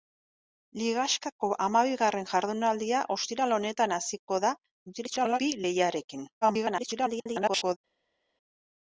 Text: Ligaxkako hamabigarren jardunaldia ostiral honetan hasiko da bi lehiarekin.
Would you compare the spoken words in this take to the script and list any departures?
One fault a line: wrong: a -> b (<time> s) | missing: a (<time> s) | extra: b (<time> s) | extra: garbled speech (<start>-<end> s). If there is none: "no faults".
extra: garbled speech (4.9-5.4 s)
extra: garbled speech (6.4-7.8 s)